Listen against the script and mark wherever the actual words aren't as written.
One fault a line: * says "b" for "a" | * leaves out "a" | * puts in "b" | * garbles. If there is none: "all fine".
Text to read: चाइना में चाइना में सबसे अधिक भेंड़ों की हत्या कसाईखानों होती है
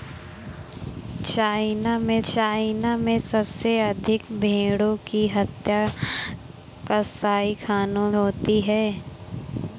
all fine